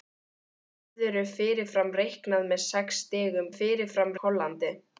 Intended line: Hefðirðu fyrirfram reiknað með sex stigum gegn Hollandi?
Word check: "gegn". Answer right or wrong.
wrong